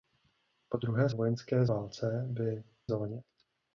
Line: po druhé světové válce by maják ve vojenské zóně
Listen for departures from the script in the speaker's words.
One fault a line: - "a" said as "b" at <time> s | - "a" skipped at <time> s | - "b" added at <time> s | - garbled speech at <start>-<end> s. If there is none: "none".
- "světové" said as "vojenské" at 1.1 s
- "maják ve vojenské" skipped at 2.6 s